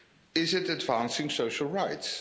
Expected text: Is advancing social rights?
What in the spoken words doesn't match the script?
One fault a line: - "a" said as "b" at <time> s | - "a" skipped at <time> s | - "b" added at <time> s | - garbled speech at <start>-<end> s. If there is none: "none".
- "it" added at 0.5 s